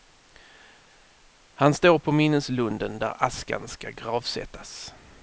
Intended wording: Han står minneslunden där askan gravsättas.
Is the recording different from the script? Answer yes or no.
yes